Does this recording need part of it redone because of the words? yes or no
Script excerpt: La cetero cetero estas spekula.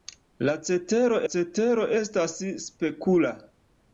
no